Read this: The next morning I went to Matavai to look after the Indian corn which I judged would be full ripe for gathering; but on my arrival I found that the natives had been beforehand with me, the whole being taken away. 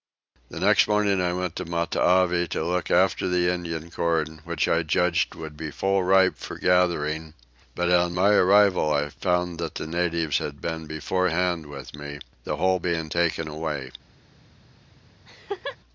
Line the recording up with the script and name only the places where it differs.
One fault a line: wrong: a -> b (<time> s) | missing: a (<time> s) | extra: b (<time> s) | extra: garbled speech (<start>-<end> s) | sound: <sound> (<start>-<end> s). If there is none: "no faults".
sound: laugh (15.3-15.8 s)